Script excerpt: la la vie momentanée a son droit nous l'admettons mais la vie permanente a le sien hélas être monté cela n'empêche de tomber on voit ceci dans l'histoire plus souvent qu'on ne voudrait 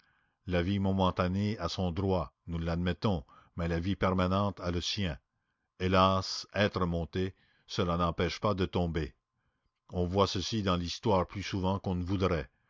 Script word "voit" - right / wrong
right